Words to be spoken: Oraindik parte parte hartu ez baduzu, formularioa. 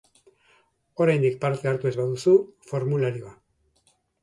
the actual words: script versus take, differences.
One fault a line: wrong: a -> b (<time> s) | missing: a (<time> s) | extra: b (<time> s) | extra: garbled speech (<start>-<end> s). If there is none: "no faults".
missing: parte (1.7 s)